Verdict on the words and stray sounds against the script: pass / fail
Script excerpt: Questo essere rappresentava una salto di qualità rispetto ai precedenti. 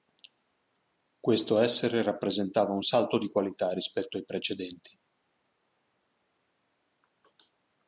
fail